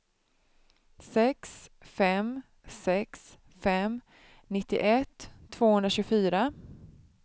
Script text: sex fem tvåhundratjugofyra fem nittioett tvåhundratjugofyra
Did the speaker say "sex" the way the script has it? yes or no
yes